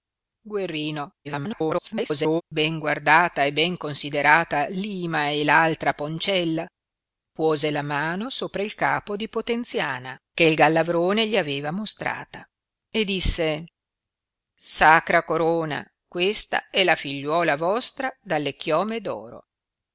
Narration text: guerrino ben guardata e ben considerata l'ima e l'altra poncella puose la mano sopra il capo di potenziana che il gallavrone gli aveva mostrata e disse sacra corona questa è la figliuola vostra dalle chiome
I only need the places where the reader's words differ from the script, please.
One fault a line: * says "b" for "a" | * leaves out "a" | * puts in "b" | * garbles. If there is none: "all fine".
* garbles